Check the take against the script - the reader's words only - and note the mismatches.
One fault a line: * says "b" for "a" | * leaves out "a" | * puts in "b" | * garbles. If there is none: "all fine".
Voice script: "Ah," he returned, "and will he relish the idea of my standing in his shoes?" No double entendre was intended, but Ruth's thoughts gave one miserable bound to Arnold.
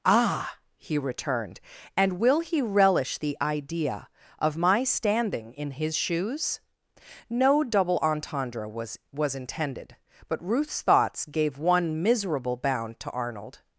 * puts in "was"